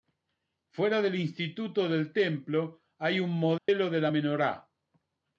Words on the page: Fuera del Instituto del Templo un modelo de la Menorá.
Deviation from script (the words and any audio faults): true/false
true